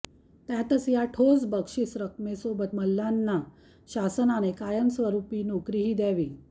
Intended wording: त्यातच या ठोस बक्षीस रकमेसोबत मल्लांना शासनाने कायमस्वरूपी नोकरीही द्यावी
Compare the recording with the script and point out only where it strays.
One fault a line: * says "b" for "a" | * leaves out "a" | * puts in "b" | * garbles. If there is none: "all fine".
all fine